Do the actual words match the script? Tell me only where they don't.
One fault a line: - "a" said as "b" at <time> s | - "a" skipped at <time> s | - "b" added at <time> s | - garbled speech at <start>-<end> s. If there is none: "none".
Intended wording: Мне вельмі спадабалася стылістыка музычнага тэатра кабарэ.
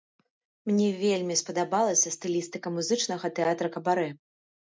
none